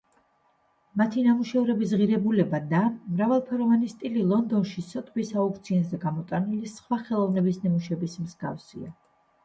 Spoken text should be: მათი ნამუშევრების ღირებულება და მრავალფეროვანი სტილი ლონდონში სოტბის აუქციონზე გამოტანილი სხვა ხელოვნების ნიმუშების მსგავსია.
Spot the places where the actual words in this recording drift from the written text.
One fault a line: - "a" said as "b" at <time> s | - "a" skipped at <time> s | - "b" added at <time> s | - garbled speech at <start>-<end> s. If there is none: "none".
none